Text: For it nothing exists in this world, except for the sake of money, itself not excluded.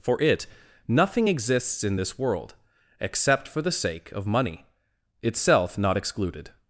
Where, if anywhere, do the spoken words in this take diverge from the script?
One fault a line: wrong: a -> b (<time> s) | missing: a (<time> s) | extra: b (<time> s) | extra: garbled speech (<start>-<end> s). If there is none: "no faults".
no faults